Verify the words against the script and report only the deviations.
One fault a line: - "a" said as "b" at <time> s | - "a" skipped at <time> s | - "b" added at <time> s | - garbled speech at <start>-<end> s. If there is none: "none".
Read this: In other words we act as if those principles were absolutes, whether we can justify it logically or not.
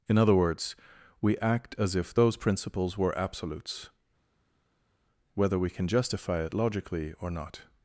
none